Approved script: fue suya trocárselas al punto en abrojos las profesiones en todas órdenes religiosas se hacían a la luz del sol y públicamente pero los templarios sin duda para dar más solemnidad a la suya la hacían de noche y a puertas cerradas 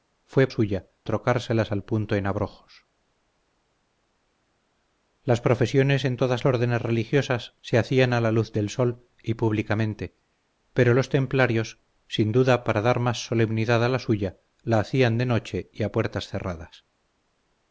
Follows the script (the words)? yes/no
yes